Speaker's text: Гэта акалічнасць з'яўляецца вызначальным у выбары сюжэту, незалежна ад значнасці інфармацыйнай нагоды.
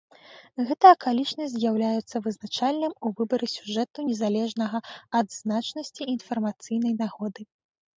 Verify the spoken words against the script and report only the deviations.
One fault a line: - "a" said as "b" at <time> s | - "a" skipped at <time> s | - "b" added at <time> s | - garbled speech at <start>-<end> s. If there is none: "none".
none